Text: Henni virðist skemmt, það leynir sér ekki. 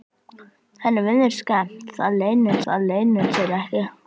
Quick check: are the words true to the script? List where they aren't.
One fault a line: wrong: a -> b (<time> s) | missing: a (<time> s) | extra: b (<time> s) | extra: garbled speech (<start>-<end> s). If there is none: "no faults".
extra: það leynir (2.7 s)